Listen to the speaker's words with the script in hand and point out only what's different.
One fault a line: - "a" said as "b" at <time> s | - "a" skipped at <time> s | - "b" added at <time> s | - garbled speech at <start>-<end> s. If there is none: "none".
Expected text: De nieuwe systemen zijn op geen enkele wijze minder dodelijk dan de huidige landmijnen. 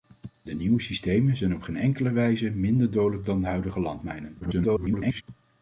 - garbled speech at 4.4-5.2 s